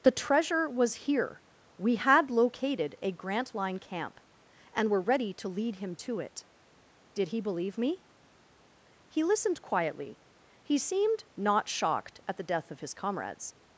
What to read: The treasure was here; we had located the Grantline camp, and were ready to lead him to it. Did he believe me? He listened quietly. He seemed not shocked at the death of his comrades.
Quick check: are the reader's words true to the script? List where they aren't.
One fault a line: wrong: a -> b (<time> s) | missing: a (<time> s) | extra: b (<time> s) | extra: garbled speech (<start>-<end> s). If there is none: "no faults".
wrong: the -> a (3.0 s)